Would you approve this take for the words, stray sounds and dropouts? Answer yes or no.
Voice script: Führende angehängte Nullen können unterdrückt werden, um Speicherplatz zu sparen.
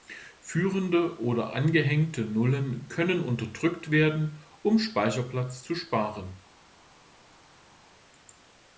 no